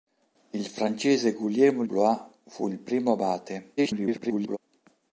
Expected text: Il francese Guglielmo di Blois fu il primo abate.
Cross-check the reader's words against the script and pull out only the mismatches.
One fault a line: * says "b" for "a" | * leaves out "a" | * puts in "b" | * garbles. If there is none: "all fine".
* leaves out "di"
* garbles